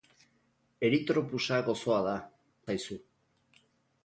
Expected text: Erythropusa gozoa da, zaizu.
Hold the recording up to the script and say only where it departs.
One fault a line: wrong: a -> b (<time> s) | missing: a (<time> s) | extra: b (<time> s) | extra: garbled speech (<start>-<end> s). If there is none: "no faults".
no faults